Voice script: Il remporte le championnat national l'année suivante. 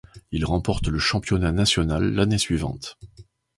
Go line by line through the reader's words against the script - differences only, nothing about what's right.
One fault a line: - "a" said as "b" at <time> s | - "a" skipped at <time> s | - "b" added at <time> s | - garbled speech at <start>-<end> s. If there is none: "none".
none